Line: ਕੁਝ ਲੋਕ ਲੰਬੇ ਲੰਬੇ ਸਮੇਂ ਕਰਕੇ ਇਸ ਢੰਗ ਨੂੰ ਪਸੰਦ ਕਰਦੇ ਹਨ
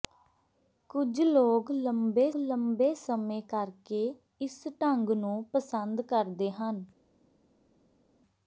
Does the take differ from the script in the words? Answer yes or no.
no